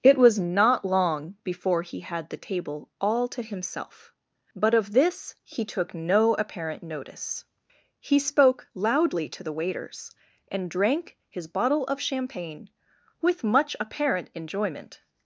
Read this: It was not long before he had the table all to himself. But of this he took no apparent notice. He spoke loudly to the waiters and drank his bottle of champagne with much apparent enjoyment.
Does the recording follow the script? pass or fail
pass